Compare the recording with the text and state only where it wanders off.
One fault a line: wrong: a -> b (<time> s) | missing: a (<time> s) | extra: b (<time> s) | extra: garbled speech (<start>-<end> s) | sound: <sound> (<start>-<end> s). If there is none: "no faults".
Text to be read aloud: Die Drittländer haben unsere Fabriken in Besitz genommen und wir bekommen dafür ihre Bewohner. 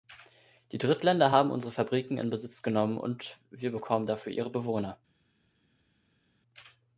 no faults